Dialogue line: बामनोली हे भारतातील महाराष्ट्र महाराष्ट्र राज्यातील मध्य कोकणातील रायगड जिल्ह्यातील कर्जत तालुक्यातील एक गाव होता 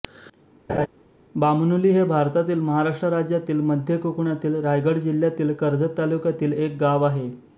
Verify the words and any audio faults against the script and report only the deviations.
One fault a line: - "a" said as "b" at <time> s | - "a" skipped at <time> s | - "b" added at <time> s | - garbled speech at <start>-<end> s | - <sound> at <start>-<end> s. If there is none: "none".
- laugh at 0.7-0.9 s
- "महाराष्ट्र" skipped at 3.1 s
- "होता" said as "आहे" at 7.0 s